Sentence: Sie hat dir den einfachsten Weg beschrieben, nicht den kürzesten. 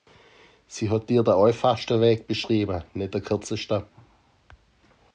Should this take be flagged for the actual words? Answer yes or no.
no